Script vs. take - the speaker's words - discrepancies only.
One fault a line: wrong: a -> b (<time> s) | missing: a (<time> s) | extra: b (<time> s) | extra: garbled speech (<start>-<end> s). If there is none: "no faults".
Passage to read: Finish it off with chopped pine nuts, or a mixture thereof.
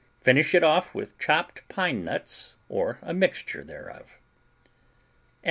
no faults